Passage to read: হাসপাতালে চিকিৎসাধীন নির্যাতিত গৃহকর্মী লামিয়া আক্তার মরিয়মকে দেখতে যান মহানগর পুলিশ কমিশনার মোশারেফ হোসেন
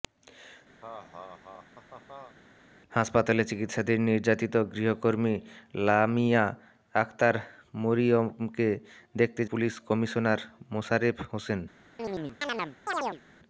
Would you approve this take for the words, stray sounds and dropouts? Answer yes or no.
no